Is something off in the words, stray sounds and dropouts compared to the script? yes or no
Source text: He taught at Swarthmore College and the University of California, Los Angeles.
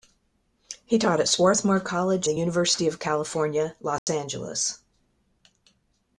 yes